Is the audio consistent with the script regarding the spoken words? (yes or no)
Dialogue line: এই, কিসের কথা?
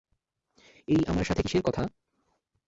no